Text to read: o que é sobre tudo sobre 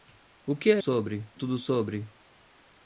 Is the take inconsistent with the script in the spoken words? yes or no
no